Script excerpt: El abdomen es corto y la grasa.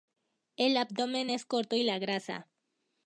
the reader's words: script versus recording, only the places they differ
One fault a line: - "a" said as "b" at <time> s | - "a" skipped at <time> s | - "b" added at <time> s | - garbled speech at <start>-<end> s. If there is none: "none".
none